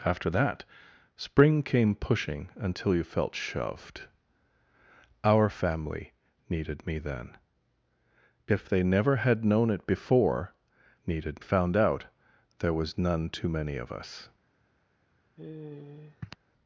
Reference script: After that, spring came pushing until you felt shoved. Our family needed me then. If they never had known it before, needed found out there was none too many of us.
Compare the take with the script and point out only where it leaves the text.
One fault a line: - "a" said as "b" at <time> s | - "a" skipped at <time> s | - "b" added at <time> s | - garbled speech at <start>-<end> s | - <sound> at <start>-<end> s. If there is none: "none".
- sigh at 15.4-16.4 s